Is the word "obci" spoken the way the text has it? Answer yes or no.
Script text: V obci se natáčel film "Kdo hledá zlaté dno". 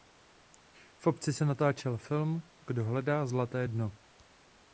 yes